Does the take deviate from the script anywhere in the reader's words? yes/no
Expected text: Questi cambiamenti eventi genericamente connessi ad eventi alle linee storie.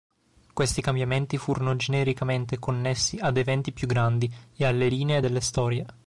yes